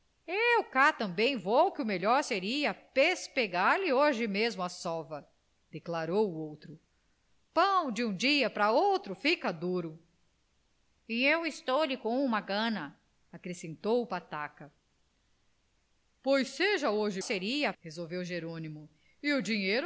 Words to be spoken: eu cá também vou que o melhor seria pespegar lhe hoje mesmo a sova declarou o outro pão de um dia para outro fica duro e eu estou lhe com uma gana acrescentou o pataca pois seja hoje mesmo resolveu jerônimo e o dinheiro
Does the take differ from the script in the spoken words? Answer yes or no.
yes